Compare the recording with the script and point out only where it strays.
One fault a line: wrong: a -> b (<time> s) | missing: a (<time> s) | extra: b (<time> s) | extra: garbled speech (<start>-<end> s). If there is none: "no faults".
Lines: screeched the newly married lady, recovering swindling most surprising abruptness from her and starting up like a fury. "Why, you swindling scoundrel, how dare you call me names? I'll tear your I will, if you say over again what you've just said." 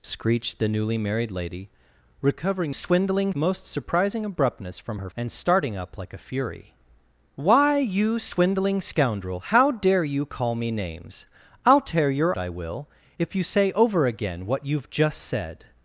no faults